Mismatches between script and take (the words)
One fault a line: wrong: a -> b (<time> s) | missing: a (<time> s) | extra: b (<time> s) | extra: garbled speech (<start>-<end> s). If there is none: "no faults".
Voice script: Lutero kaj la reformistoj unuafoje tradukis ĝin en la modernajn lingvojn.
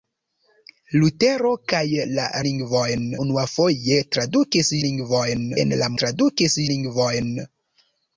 wrong: reformistoj -> lingvojn (2.5 s)
wrong: ĝin -> lingvojn (4.9 s)
wrong: modernajn -> tradukis (6.0 s)